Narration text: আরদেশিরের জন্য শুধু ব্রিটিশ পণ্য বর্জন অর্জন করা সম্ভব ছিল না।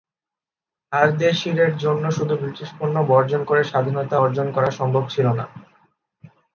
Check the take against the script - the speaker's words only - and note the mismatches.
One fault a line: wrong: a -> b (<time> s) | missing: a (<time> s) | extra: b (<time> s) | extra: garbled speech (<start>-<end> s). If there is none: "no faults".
extra: করে স্বাধীনতা (3.4 s)